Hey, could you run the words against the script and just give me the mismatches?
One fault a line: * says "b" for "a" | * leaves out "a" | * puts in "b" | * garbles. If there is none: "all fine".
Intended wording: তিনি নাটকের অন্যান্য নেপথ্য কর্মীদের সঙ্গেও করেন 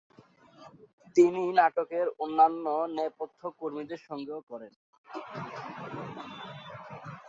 all fine